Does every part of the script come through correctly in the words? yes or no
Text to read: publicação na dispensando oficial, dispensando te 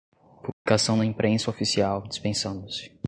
no